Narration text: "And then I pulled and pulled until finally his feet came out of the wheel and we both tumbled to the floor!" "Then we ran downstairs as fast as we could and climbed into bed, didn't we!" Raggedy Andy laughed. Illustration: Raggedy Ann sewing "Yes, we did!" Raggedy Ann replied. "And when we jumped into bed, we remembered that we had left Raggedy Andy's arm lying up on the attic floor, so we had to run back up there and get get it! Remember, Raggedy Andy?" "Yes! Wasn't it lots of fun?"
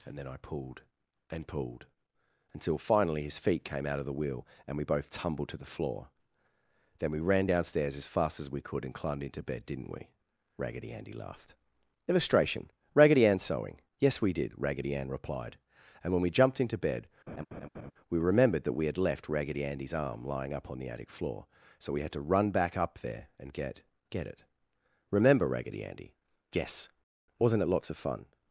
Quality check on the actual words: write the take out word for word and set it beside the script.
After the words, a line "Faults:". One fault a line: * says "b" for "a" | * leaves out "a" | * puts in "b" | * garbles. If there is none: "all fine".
"And then I pulled and pulled until finally his feet came out of the wheel and we both tumbled to the floor!" "Then we ran downstairs as fast as we could and climbed into bed, didn't we!" Raggedy Andy laughed. Illustration: Raggedy Ann sewing "Yes, we did!" Raggedy Ann replied. "And when we jumped into bed, we remembered that we had left Raggedy Andy's arm lying up on the attic floor, so we had to run back up there and get get it! Remember, Raggedy Andy?" "Yes! Wasn't it lots of fun?"
Faults:
all fine